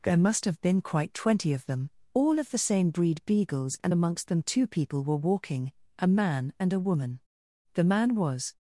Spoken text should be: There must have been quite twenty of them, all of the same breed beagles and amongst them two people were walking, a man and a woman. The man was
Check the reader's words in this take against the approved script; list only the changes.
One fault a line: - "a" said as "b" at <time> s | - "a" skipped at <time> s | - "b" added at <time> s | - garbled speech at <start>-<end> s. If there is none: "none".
none